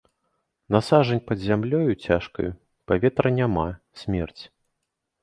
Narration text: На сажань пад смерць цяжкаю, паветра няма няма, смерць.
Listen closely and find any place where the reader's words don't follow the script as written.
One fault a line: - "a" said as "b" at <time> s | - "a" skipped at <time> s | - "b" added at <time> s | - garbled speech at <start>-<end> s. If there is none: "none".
- "смерць" said as "зямлёю" at 1.5 s
- "няма" skipped at 3.7 s